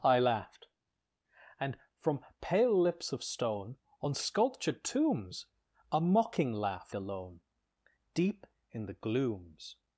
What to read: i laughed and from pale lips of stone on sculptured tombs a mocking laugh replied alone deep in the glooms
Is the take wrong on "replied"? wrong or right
wrong